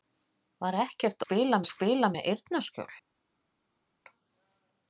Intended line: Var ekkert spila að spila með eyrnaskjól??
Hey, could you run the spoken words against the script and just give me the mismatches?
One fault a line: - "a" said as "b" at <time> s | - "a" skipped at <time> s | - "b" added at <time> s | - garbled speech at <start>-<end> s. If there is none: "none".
none